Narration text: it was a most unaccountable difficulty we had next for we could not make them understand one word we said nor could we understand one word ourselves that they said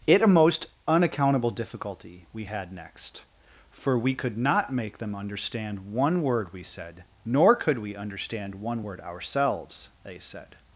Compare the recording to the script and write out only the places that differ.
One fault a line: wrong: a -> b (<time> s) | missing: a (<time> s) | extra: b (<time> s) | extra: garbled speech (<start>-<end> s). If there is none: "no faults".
missing: was (0.2 s)
missing: that (9.9 s)